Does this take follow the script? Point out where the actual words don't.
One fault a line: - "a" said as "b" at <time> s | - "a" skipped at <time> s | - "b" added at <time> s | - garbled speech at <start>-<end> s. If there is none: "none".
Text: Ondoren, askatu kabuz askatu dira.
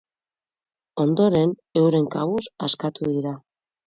- "askatu" said as "euren" at 1.8 s